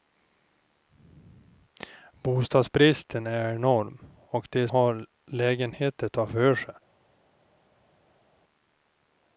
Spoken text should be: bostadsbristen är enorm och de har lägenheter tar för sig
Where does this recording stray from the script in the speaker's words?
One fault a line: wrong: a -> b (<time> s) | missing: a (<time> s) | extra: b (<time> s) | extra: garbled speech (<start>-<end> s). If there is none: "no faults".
no faults